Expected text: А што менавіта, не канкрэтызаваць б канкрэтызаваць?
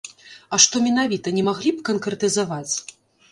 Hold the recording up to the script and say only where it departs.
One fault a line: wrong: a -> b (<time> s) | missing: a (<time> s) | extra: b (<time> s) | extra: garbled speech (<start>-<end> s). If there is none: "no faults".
wrong: канкрэтызаваць -> маглі (1.5 s)